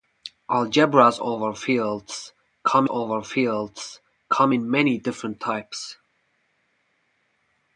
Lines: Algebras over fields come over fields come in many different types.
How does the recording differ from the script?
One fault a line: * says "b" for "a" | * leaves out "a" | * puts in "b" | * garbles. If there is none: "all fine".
all fine